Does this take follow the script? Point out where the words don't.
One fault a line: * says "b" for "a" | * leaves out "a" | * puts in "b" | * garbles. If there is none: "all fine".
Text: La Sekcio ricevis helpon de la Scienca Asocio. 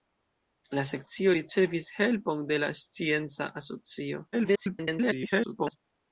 * garbles